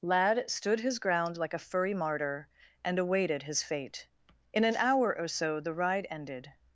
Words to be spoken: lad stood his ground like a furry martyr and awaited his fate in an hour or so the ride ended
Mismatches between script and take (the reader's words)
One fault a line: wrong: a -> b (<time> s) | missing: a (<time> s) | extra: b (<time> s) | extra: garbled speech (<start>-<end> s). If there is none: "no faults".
no faults